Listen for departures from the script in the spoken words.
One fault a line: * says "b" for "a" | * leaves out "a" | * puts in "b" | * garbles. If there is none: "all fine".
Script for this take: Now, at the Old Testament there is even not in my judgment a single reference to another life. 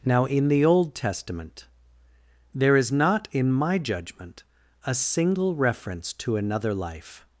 * says "in" for "at"
* leaves out "even"